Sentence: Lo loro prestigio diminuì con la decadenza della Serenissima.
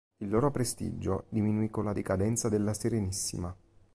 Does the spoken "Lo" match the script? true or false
false